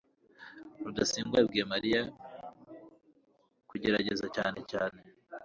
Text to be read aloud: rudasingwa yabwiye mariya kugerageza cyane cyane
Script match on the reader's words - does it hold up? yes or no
yes